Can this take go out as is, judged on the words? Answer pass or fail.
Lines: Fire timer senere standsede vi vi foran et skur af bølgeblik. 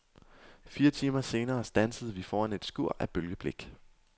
fail